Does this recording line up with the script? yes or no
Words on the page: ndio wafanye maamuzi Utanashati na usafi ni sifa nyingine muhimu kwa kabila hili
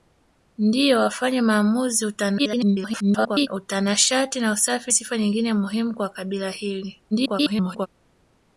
no